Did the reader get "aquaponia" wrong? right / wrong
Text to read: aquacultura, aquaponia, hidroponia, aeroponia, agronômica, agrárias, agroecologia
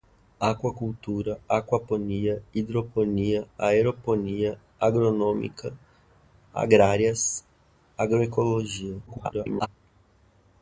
right